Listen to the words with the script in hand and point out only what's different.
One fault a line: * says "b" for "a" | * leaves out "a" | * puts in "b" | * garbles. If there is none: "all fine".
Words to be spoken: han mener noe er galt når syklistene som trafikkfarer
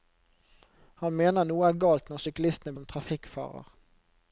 all fine